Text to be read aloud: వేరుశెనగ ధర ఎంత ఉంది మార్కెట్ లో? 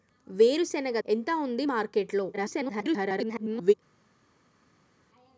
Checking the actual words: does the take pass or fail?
fail